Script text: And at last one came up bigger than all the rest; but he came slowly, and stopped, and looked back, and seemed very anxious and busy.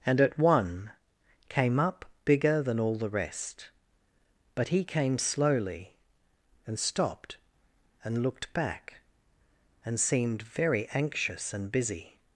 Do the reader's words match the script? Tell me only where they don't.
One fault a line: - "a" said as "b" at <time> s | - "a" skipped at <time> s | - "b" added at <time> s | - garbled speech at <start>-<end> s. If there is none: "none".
- "last" skipped at 0.4 s